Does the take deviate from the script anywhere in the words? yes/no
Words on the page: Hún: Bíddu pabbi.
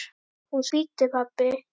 no